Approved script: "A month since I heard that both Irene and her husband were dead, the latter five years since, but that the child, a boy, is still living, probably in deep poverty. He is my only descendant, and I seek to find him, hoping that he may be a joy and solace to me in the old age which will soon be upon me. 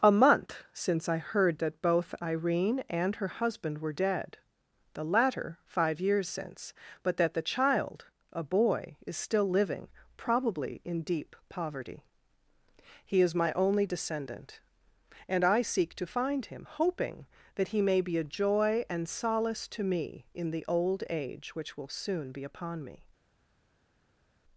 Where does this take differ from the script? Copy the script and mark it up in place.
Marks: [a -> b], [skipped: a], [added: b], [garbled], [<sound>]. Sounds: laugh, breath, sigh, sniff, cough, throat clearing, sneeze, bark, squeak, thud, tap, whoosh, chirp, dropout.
"A month since I heard that both Irene and her husband were dead, the latter five years since, but that the child, a boy, is still living, probably in deep poverty. He is my only descendant, and I seek to find him, hoping that he may be a joy and solace to me in the old age which will soon be upon me.